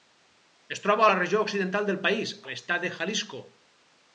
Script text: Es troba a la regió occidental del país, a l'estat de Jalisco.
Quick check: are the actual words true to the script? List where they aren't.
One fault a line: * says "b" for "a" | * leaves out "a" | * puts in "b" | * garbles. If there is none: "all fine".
all fine